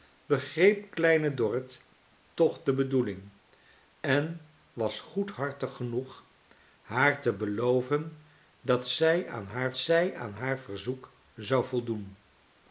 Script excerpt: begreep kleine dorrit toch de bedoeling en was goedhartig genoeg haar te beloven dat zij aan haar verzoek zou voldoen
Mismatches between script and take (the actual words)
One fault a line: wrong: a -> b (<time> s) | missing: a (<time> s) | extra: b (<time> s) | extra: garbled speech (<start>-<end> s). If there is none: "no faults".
extra: zij aan haar (9.8 s)